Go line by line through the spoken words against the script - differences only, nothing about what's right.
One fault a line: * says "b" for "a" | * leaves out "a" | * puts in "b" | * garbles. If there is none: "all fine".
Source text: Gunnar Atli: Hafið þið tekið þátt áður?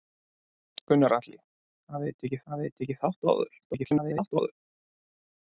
* puts in "Hafið þið tekið"
* garbles